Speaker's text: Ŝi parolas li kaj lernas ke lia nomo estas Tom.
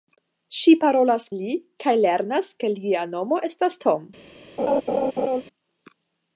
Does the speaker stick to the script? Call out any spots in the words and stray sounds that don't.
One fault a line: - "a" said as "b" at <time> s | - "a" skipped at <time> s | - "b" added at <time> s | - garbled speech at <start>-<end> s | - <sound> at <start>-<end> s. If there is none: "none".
- laugh at 4.6-5.4 s